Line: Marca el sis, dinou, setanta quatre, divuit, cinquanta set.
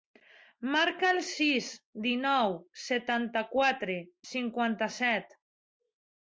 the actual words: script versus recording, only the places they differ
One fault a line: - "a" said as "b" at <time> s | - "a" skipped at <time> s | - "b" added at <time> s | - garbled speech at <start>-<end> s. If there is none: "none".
- "divuit" skipped at 4.0 s